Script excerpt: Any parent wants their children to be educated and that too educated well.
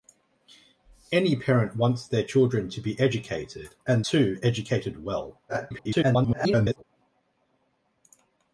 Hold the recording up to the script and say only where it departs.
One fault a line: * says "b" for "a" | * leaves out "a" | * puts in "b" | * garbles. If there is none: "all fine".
* leaves out "that"
* garbles